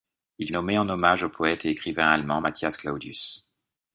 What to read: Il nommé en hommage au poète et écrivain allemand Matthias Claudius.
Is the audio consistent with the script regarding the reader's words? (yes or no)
yes